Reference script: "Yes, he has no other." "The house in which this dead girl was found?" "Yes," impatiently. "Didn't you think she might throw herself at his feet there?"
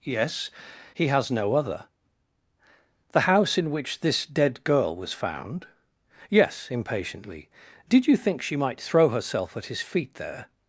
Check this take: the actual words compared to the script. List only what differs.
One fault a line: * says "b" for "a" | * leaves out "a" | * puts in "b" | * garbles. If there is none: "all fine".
* says "Did" for "Didn't"